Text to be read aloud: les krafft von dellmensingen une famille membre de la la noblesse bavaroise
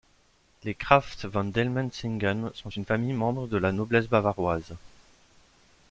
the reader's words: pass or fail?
fail